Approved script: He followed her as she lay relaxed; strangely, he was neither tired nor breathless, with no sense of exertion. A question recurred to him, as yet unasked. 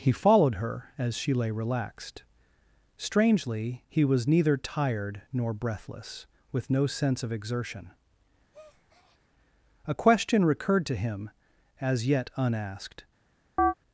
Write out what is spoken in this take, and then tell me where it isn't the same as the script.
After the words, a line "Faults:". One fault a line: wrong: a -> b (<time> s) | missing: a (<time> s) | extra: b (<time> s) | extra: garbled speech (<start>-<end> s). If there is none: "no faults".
He followed her as she lay relaxed; strangely, he was neither tired nor breathless, with no sense of exertion. A question recurred to him, as yet unasked.
Faults:
no faults